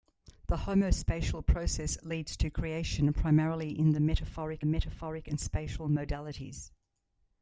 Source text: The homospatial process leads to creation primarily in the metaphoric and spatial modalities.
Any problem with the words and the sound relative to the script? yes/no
yes